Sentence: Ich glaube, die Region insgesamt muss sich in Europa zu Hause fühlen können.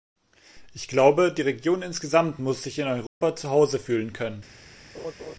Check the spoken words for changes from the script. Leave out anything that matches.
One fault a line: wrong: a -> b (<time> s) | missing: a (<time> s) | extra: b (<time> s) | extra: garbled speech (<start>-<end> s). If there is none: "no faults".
no faults